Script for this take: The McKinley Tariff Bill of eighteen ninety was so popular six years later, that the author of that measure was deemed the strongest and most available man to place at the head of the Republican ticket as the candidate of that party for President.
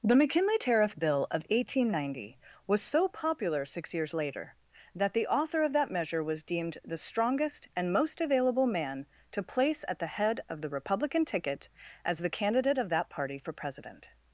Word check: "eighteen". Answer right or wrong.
right